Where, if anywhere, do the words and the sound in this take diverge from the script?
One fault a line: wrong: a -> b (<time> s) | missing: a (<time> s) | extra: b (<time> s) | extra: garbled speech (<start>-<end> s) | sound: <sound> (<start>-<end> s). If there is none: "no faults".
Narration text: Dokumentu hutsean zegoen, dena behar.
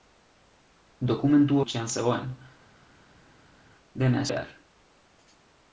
no faults